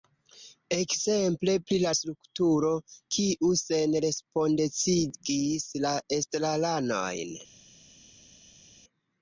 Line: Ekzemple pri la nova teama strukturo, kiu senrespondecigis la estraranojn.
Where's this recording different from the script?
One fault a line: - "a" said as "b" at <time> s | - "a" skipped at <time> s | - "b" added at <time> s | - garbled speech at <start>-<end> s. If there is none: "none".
- "nova teama" skipped at 1.9 s